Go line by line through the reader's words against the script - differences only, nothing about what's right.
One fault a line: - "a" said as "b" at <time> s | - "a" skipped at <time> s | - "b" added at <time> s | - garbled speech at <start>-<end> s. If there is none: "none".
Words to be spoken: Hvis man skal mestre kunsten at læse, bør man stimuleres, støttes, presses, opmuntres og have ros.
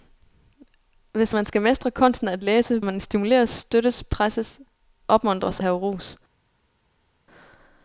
- "bør" skipped at 2.8 s
- "og" skipped at 5.6 s